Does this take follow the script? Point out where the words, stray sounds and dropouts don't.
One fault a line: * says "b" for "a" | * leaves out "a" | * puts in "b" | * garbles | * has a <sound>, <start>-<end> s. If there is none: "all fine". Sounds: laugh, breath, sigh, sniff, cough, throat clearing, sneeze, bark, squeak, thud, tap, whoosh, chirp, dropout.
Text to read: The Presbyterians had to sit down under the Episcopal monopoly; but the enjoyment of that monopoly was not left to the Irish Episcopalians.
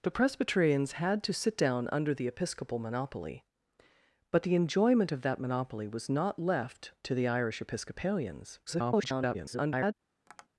* garbles
* has a tap, 10.3-10.5 s